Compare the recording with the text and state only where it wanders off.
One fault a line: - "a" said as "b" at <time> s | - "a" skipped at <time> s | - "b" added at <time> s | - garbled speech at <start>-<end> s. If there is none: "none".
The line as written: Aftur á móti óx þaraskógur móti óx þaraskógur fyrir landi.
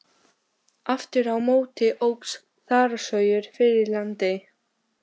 - "móti óx þaraskógur" skipped at 3.5 s